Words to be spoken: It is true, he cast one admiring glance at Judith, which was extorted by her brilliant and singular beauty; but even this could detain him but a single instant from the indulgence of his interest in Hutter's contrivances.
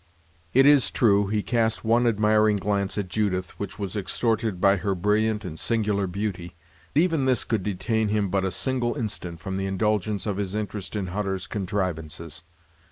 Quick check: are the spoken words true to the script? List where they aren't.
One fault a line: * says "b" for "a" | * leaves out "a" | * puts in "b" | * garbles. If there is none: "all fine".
* leaves out "but"